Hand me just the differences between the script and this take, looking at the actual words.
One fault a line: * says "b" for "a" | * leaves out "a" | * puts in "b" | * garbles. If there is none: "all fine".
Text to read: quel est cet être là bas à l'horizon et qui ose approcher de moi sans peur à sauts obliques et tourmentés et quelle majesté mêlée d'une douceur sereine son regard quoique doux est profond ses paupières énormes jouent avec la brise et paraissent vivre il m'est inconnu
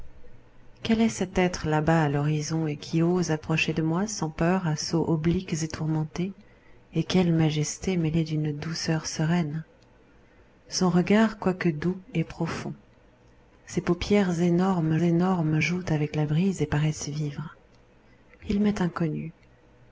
* puts in "énormes"